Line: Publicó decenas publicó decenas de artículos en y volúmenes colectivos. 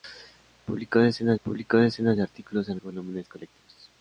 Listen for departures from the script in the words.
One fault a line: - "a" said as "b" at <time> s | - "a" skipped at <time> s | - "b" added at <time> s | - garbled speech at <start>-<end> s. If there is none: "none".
none